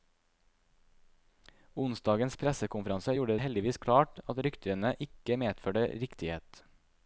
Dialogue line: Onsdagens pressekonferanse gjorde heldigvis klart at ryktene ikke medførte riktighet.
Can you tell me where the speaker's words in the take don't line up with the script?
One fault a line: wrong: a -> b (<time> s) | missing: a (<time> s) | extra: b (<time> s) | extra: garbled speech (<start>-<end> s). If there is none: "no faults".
no faults